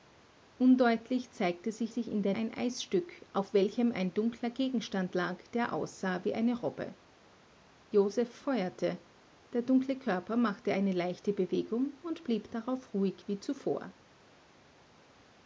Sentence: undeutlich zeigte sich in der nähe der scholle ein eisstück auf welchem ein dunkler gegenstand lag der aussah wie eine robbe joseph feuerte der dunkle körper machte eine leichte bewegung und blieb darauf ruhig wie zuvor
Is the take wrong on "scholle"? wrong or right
wrong